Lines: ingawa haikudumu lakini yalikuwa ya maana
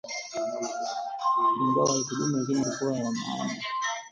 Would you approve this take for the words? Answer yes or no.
yes